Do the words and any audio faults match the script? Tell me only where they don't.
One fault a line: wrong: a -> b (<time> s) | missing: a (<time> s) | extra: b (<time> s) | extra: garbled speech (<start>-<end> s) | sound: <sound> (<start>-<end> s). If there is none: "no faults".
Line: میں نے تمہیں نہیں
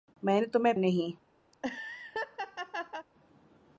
sound: laugh (1.5-3.1 s)